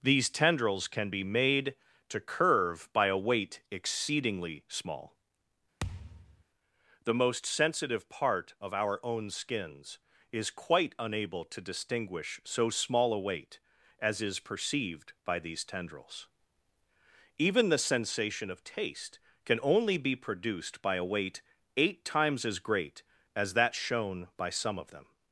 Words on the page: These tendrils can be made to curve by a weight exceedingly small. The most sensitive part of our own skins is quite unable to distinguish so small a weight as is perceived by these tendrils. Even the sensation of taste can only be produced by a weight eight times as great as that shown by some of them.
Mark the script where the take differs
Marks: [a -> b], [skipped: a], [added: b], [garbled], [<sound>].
These tendrils can be made to curve by a weight exceedingly small. [thud] The most sensitive part of our own skins is quite unable to distinguish so small a weight as is perceived by these tendrils. Even the sensation of taste can only be produced by a weight eight times as great as that shown by some of them.